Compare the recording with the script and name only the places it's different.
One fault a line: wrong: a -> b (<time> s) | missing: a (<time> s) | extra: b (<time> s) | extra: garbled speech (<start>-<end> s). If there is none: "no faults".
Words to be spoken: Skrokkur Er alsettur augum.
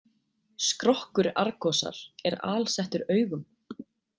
extra: Argosar (1.4 s)